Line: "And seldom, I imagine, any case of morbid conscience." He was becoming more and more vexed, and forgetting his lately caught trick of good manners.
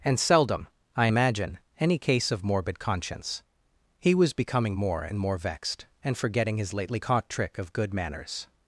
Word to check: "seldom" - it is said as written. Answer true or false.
true